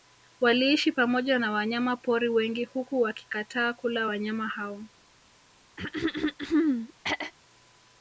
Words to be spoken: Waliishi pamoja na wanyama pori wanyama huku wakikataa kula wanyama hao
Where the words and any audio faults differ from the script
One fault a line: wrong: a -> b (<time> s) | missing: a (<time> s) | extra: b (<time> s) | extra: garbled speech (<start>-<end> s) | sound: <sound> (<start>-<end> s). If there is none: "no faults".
wrong: wanyama -> wengi (2.3 s)
sound: throat clearing (5.8-7.3 s)